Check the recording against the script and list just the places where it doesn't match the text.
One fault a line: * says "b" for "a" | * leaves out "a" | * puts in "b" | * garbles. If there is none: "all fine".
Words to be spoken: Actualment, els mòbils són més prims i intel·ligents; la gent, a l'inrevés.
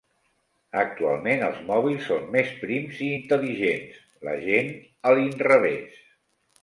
all fine